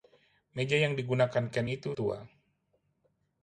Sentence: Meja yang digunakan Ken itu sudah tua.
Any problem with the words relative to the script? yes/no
yes